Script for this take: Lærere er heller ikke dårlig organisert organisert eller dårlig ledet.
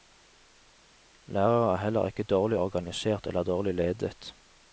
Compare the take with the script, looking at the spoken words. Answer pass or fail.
fail